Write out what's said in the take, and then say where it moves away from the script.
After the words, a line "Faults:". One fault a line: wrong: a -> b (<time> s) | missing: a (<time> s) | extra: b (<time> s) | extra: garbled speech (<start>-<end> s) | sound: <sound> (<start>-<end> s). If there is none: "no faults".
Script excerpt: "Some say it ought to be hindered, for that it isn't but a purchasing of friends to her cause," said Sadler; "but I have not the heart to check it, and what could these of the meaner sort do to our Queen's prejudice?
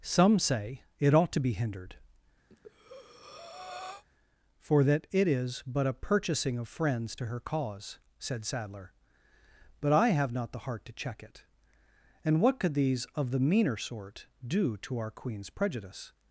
"Some say it ought to be hindered, for that it is but a purchasing of friends to her cause," said Sadler; "but I have not the heart to check it, and what could these of the meaner sort do to our Queen's prejudice?
Faults:
sound: breath (2.5-4.0 s)
wrong: isn't -> is (5.3 s)